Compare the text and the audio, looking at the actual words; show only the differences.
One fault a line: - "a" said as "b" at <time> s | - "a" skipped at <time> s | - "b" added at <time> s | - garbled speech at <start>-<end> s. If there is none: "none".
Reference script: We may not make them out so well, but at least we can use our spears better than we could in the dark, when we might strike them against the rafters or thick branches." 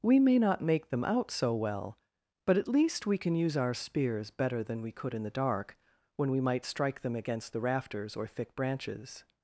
none